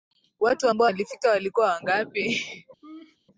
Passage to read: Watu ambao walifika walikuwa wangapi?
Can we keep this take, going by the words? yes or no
yes